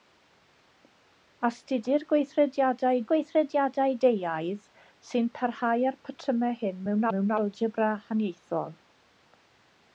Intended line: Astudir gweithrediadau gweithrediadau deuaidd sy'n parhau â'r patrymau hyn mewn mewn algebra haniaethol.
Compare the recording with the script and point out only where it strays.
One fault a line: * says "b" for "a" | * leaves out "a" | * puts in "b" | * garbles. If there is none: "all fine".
all fine